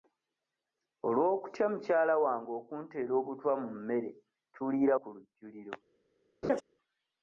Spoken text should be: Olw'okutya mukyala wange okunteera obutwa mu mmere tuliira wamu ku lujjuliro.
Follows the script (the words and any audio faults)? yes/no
no